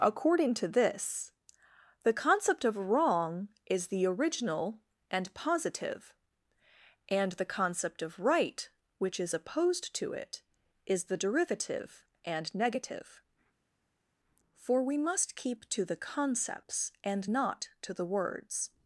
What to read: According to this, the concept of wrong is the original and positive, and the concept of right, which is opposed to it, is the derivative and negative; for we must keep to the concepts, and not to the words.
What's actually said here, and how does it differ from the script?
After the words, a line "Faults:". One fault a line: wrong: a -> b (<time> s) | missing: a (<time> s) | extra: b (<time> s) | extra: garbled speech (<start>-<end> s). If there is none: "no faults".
According to this, the concept of wrong is the original and positive, and the concept of right, which is opposed to it, is the derivative and negative; for we must keep to the concepts, and not to the words.
Faults:
no faults